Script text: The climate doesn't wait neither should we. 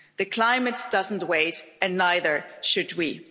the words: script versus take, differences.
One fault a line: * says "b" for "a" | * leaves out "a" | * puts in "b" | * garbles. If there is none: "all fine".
* puts in "and"